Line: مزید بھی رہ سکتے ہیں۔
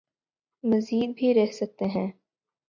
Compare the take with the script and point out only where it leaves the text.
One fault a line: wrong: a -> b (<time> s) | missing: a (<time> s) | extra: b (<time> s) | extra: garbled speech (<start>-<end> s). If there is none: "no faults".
no faults